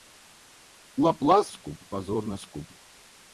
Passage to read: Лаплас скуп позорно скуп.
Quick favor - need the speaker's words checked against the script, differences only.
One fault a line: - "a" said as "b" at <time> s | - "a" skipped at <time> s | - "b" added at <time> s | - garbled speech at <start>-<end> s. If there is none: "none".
none